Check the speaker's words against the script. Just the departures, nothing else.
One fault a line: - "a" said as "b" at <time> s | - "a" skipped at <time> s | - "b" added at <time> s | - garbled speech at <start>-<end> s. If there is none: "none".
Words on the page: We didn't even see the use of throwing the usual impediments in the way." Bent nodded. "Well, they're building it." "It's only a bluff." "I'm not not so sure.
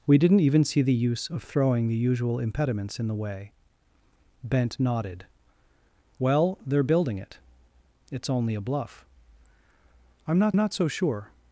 none